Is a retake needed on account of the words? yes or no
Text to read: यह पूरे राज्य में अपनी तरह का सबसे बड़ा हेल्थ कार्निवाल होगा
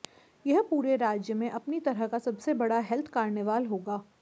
no